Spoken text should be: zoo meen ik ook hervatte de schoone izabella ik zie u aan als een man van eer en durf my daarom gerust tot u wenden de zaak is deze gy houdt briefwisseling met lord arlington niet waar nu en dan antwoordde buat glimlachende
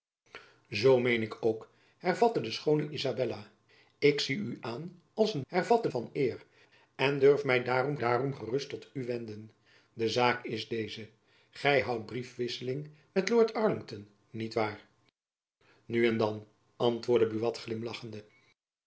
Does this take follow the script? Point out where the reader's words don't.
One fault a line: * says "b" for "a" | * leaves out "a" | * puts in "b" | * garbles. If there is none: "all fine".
* says "hervatte" for "man"
* puts in "daarom"